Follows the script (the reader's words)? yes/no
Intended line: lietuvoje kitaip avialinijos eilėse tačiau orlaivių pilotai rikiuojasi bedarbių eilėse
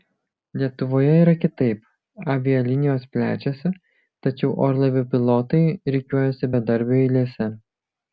no